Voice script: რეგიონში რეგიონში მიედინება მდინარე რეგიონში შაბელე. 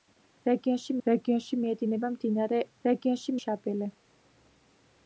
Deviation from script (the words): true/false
false